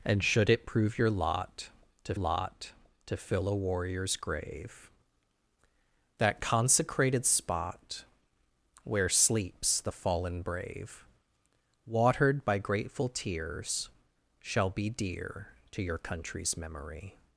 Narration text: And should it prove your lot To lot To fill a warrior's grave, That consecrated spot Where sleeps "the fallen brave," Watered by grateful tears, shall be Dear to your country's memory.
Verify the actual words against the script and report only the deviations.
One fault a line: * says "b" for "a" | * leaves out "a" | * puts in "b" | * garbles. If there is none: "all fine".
all fine